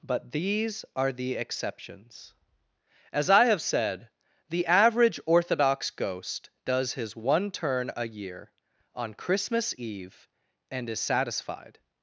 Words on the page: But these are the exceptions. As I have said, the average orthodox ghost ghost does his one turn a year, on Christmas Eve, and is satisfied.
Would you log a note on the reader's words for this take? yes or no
yes